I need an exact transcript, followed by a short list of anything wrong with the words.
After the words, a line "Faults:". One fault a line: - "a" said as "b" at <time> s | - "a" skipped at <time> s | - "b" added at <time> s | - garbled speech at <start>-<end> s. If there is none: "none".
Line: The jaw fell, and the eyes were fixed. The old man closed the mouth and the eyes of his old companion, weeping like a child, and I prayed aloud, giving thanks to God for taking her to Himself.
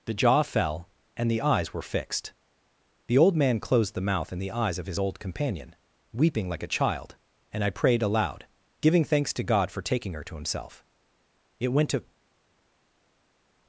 The jaw fell, and the eyes were fixed. The old man closed the mouth and the eyes of his old companion, weeping like a child, and I prayed aloud, giving thanks to God for taking her to Himself. It went to
Faults:
- "It went to" added at 11.6 s